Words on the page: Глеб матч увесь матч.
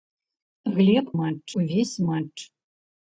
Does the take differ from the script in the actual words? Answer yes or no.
no